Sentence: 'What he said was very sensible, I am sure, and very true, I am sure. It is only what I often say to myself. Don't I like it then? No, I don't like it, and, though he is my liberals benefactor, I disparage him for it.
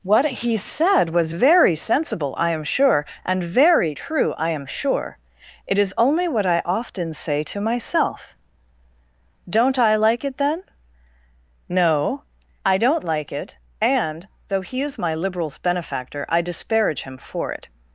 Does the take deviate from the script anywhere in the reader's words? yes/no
no